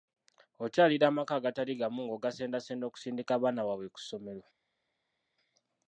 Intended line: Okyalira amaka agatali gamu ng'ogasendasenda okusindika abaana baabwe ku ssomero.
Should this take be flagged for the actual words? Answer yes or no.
no